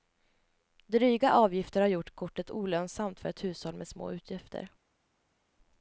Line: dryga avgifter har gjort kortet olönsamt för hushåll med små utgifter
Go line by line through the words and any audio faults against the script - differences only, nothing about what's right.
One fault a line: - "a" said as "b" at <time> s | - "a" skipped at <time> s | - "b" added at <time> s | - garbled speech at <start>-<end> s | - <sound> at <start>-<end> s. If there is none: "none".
- "ett" added at 3.3 s